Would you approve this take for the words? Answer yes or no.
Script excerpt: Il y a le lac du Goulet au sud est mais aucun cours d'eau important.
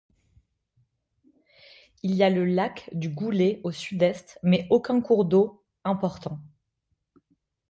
yes